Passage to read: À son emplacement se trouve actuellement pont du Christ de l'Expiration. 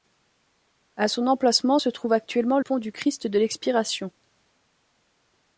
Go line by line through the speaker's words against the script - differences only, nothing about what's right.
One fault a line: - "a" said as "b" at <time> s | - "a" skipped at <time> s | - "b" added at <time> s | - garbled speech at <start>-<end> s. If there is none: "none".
none